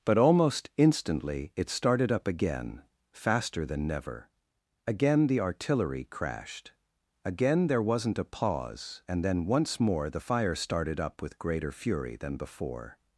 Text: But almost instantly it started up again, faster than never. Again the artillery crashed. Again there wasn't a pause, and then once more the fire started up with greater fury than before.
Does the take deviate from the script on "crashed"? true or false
false